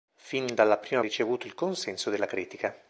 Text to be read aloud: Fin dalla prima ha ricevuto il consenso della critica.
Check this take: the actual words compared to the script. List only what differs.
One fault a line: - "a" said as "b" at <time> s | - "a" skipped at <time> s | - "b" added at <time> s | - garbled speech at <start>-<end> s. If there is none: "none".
none